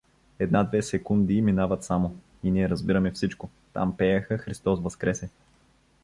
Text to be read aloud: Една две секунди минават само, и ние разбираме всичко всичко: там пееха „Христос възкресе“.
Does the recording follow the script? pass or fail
fail